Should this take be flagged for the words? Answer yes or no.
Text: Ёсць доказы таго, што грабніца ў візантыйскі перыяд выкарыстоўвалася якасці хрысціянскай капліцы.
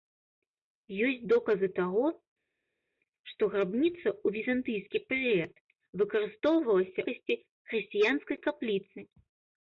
no